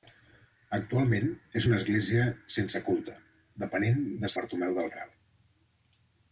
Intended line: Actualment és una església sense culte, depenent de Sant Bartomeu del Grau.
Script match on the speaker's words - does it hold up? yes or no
no